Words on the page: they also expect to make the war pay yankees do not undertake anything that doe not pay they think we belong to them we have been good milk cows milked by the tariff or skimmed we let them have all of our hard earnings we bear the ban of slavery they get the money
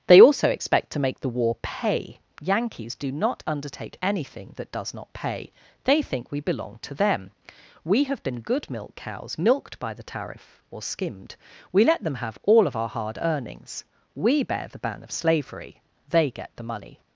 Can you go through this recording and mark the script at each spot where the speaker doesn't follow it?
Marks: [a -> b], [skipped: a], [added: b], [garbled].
they also expect to make the war pay yankees do not undertake anything that [doe -> does] not pay they think we belong to them we have been good milk cows milked by the tariff or skimmed we let them have all of our hard earnings we bear the ban of slavery they get the money